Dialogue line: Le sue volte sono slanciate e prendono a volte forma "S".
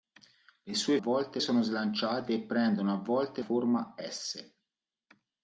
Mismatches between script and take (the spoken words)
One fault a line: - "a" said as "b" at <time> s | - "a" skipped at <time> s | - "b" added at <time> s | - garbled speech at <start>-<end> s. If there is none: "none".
none